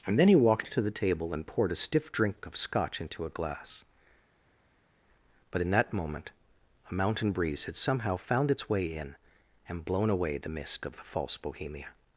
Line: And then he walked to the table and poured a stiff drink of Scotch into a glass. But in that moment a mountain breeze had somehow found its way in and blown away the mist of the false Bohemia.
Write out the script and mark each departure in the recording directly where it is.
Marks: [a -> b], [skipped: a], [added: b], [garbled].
And then he walked to the table and poured a stiff drink of Scotch into a glass. But in that moment a mountain breeze had somehow found its way in and blown away the mist of the false Bohemia.